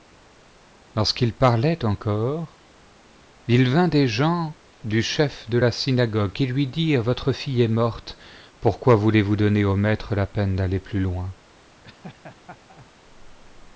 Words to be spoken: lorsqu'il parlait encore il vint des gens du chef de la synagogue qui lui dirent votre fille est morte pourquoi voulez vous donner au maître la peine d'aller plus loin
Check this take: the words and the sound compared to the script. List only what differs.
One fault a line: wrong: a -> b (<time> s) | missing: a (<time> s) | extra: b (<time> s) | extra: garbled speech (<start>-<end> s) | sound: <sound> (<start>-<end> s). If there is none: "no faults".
sound: laugh (11.8-12.9 s)